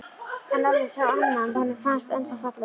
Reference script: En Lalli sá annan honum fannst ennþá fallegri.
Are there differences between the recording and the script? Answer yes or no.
no